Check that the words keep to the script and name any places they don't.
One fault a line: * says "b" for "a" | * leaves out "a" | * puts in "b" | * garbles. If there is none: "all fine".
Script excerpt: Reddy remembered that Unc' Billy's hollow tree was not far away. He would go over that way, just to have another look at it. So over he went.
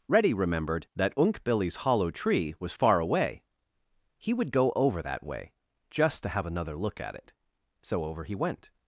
* leaves out "not"